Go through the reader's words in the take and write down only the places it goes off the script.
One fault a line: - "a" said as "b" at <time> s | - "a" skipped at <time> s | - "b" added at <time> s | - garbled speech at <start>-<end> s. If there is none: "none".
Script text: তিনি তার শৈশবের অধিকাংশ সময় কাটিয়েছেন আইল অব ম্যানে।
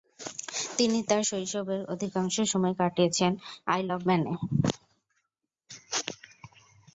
none